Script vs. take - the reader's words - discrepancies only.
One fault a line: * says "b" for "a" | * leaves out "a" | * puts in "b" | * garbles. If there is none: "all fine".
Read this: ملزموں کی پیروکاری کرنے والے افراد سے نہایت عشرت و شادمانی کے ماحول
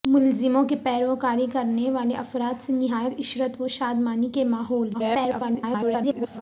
* garbles